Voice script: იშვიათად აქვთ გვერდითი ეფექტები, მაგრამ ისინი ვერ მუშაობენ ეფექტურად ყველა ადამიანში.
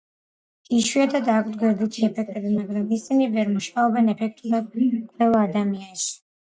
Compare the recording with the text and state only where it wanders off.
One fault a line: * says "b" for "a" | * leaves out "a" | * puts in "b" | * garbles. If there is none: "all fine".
all fine